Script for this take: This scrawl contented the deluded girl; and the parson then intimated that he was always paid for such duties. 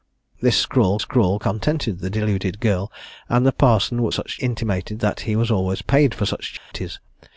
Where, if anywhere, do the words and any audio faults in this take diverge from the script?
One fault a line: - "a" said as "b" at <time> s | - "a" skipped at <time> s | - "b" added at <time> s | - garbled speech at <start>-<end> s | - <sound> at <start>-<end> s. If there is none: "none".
- "scrawl" added at 1.0 s
- "then" said as "such" at 4.1 s
- dropout at 6.6-6.7 s